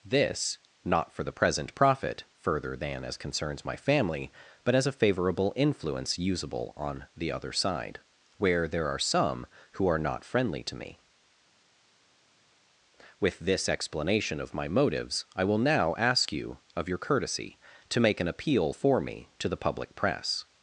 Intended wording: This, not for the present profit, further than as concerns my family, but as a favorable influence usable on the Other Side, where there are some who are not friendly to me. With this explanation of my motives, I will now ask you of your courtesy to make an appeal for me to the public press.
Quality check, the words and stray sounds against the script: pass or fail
pass